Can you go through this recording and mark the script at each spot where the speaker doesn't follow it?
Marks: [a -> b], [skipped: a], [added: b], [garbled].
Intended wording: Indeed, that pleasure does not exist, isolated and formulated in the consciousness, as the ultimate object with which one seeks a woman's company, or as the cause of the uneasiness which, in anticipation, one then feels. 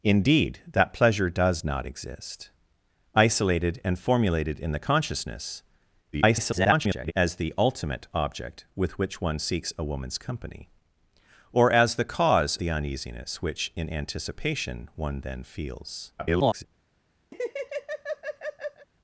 Indeed, that pleasure does not exist, isolated and formulated in the consciousness, [garbled] as the ultimate object with which one seeks a woman's company, or as the cause [skipped: of] the uneasiness which, in anticipation, one then feels. [garbled]